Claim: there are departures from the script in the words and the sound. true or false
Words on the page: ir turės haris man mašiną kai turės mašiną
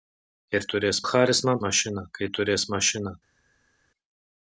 false